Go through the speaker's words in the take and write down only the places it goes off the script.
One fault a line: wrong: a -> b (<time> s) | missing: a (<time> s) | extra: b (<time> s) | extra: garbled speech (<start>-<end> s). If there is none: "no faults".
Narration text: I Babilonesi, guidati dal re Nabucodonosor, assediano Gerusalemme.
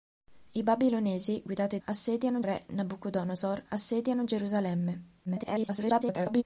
wrong: dal -> assediano (1.8 s)
extra: garbled speech (5.3-6.4 s)